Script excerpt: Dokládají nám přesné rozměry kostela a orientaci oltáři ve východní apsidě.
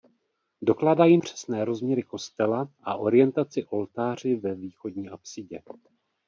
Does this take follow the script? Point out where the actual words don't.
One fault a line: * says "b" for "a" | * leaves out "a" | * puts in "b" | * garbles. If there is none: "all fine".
* leaves out "nám"